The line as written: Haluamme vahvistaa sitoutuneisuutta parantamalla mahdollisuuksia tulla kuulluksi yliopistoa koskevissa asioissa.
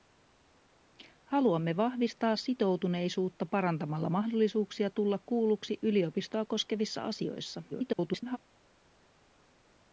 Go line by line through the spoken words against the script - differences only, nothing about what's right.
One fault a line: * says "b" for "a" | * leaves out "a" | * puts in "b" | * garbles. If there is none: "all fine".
* garbles